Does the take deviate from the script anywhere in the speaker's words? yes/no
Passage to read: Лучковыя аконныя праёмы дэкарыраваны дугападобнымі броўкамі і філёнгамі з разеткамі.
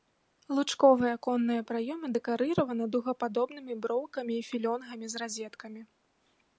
no